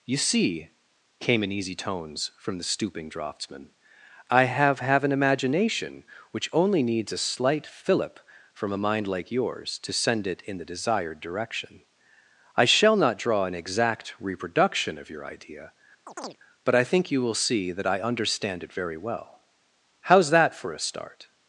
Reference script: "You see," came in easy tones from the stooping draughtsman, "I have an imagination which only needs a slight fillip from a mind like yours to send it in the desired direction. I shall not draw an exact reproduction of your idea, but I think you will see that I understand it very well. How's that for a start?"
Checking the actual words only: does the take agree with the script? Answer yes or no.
no